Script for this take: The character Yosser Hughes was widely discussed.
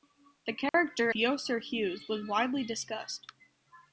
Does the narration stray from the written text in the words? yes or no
no